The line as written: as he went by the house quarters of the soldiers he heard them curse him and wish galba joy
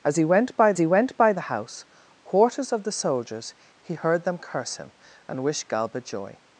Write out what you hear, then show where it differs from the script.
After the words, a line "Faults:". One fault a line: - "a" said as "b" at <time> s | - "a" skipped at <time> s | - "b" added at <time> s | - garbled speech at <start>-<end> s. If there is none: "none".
as he went by he went by the house quarters of the soldiers he heard them curse him and wish galba joy
Faults:
- "he went by" added at 0.8 s